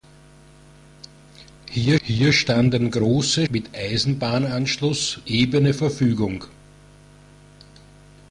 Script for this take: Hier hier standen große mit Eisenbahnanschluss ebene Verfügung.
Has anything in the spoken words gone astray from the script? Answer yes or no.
no